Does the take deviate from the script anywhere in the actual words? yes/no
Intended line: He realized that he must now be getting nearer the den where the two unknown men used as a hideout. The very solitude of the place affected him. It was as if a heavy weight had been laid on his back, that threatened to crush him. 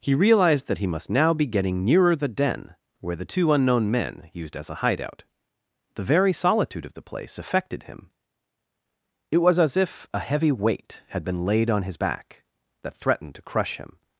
no